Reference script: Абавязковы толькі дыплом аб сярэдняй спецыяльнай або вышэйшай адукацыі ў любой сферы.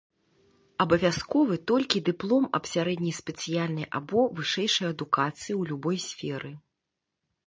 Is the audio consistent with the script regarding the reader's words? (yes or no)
yes